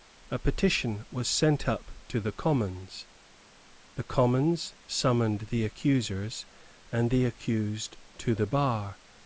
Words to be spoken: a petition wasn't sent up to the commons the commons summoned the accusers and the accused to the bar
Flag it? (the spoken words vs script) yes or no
yes